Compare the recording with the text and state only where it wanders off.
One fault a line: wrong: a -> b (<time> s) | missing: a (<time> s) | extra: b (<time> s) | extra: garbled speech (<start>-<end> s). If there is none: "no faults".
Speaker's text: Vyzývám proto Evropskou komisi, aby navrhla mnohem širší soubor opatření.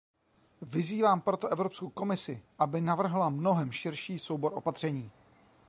no faults